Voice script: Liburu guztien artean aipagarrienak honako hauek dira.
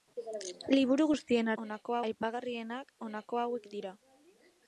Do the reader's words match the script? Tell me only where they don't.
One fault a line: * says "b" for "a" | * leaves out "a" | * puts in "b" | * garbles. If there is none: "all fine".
* says "honako" for "artean"